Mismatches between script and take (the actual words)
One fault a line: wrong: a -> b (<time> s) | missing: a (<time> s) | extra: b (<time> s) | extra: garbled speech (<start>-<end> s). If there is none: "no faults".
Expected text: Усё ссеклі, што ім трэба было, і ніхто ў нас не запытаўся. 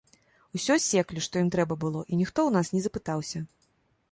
no faults